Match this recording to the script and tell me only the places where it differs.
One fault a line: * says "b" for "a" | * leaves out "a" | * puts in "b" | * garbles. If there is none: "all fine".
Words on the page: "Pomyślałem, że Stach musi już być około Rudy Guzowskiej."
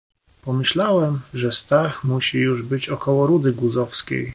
all fine